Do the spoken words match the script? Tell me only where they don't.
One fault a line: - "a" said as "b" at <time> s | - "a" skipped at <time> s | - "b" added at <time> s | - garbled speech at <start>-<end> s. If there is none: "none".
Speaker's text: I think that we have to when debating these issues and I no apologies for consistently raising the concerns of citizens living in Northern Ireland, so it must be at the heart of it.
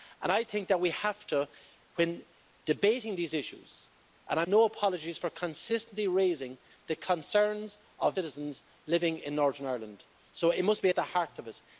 none